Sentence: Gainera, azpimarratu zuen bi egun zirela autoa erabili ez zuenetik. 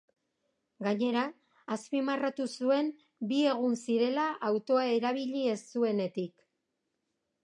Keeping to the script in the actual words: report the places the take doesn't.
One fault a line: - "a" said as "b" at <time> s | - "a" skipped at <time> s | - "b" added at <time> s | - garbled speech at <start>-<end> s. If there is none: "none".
none